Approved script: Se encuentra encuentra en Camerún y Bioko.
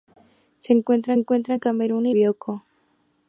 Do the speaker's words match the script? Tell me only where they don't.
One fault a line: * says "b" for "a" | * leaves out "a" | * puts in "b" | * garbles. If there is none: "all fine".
all fine